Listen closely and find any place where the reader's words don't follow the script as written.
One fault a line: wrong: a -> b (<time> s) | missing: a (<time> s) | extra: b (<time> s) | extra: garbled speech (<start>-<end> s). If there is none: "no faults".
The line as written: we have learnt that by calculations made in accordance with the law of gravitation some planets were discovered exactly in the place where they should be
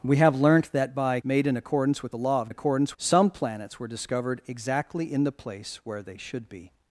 missing: calculations (1.2 s)
wrong: gravitation -> accordance (2.5 s)